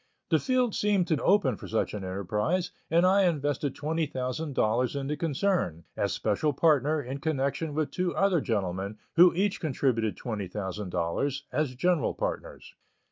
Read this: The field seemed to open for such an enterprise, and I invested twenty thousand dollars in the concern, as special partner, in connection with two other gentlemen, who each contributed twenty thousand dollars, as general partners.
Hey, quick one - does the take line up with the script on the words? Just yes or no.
yes